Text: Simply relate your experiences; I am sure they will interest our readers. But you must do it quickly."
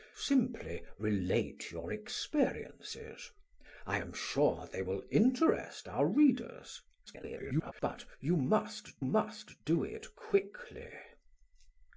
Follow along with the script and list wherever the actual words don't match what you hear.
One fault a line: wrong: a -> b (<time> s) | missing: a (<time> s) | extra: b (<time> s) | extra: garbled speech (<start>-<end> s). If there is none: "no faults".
extra: garbled speech (7.1-7.7 s)
extra: must (9.0 s)